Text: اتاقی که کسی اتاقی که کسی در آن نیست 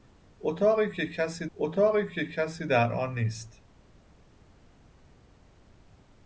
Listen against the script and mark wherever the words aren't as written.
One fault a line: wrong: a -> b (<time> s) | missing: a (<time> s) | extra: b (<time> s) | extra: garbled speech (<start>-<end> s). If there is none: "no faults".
no faults